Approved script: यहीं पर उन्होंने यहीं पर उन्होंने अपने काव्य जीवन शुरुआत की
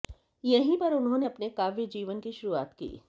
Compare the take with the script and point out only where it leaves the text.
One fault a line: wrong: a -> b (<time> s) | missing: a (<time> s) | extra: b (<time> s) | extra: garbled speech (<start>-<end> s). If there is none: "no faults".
missing: यहीं पर उन्होंने (1.3 s)
extra: की (2.2 s)